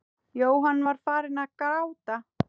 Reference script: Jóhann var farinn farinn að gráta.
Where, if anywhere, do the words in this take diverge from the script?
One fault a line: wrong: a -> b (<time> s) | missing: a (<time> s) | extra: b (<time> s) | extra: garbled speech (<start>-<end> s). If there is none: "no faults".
missing: farinn (1.4 s)